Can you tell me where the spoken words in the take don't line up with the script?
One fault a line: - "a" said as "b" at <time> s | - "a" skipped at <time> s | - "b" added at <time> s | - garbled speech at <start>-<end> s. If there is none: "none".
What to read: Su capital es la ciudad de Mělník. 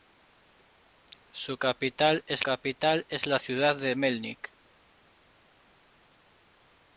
- "capital es" added at 2.4 s